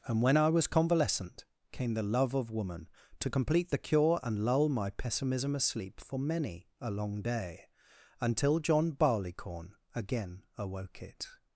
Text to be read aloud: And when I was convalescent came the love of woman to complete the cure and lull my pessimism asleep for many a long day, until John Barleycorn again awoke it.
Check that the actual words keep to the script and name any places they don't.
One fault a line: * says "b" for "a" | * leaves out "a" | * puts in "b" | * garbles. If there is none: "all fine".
all fine